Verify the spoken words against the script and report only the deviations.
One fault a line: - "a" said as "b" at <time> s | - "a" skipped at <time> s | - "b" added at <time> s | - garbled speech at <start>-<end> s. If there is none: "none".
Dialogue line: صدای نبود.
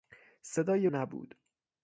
none